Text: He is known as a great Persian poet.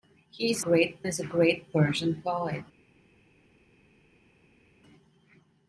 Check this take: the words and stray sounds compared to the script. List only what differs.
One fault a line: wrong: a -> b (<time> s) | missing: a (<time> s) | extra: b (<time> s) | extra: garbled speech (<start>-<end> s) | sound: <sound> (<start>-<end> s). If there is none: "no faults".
wrong: known -> great (0.6 s)